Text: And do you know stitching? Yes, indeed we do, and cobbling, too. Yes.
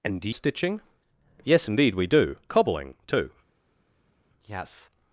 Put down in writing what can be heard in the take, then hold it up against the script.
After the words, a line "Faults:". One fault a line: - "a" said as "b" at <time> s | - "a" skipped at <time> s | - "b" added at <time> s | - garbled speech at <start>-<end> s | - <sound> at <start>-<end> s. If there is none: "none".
And do stitching? Yes, indeed we do, cobbling, too. Yes.
Faults:
- "you know" skipped at 0.3 s
- "and" skipped at 2.4 s